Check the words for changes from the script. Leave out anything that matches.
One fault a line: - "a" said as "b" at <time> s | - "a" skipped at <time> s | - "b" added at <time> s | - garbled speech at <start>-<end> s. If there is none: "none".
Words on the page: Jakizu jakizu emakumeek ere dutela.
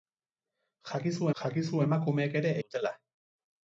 none